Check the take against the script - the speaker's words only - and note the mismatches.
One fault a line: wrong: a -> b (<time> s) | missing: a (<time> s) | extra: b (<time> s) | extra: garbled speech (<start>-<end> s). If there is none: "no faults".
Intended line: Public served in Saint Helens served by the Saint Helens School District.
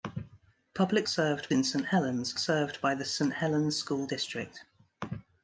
no faults